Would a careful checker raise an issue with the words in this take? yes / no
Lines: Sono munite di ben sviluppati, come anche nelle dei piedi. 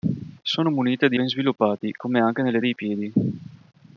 no